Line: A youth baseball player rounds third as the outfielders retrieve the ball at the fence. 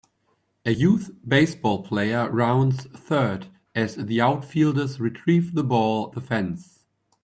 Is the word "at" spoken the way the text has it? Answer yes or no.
no